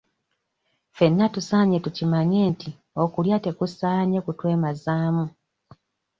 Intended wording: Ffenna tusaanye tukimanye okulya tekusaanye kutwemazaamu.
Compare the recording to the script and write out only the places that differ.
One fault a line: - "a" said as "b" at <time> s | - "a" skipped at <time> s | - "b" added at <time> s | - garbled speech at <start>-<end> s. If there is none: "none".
- "nti" added at 2.5 s